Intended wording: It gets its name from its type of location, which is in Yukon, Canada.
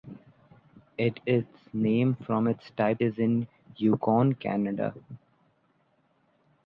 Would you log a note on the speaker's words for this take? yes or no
yes